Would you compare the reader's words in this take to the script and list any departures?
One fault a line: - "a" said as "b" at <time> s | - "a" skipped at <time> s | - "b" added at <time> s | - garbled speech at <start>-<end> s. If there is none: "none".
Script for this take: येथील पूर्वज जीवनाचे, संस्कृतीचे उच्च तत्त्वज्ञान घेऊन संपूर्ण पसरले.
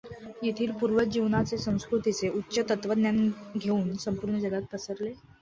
- "जगात" added at 4.4 s